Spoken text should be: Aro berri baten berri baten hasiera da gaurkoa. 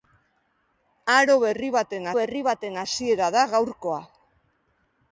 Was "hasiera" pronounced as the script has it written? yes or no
yes